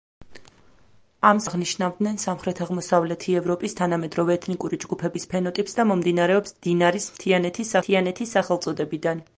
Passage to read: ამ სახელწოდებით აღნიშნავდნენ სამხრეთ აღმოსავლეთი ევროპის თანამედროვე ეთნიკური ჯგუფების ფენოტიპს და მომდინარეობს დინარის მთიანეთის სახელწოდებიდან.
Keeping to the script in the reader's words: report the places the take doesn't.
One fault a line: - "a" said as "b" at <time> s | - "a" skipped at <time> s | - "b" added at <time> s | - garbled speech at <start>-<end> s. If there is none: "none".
- "სახელწოდებით" skipped at 1.4 s
- "მთიანეთის" added at 7.8 s